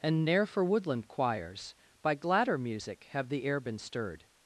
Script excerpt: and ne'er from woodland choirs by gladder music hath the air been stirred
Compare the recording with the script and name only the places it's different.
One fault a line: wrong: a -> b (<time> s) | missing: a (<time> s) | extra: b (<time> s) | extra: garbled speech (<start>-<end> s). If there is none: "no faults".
wrong: from -> for (0.5 s)
wrong: hath -> have (3.1 s)